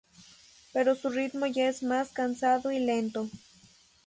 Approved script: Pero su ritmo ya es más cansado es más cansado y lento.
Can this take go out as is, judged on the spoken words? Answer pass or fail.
fail